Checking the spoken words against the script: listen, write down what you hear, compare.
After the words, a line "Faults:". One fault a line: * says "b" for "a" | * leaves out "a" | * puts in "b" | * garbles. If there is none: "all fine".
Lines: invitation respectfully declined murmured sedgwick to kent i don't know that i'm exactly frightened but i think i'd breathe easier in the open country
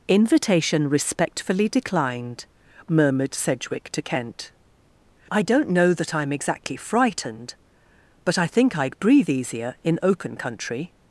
invitation respectfully declined murmured sedgwick to kent i don't know that i'm exactly frightened but i think i'd breathe easier in open country
Faults:
* leaves out "the"